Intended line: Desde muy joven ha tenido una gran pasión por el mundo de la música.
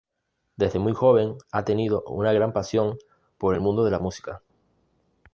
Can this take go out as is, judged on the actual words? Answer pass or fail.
pass